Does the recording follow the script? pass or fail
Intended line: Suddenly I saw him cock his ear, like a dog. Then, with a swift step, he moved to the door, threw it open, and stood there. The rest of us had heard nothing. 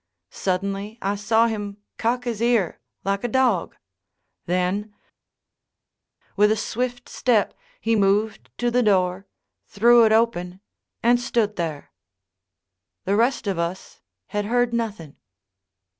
pass